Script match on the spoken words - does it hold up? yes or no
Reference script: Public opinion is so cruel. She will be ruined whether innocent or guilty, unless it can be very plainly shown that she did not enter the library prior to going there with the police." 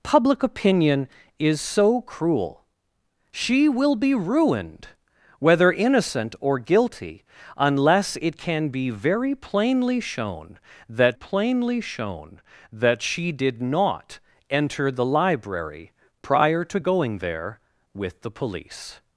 no